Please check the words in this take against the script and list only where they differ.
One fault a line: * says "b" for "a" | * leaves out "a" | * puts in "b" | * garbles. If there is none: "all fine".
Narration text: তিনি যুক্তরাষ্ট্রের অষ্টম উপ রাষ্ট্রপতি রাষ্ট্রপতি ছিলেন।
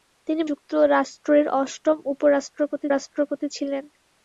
all fine